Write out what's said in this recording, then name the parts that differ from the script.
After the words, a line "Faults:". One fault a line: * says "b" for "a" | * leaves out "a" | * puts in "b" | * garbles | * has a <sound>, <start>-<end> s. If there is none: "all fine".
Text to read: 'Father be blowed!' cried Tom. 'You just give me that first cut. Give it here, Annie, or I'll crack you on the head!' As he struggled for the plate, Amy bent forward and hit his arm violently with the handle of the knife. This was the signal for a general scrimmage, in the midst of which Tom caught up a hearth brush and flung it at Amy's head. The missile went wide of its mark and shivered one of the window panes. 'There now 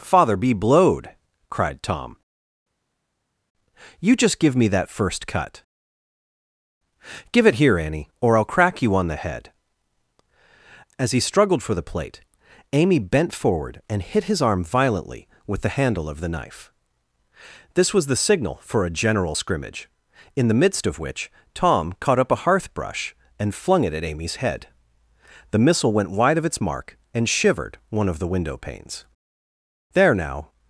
'Father be blowed!' cried Tom. 'You just give me that first cut. Give it here, Annie, or I'll crack you on the head!' As he struggled for the plate, Amy bent forward and hit his arm violently with the handle of the knife. This was the signal for a general scrimmage, in the midst of which Tom caught up a hearth brush and flung it at Amy's head. The missile went wide of its mark and shivered one of the window panes. 'There now
Faults:
all fine